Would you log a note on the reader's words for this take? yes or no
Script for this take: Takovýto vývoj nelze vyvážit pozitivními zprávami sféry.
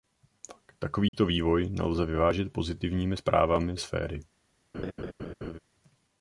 no